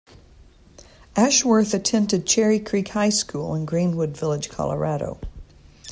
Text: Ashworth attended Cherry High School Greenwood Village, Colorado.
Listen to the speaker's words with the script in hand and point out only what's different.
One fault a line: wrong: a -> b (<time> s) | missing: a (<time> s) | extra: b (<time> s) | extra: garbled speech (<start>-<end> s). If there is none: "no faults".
extra: Creek (2.6 s)
extra: in (3.5 s)